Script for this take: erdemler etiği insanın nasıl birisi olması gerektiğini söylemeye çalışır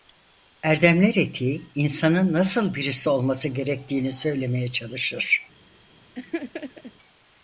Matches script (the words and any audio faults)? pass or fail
fail